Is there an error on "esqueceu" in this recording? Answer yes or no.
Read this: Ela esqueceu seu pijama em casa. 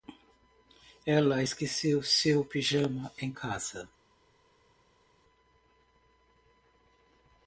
no